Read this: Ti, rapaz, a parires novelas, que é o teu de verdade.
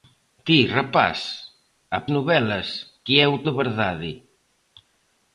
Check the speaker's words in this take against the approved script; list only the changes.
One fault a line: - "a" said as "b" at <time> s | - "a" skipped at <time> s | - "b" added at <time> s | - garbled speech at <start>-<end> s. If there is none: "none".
- "parires" skipped at 2.0 s
- "teu" skipped at 3.4 s